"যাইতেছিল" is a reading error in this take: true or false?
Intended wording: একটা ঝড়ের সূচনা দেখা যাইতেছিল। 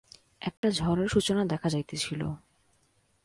false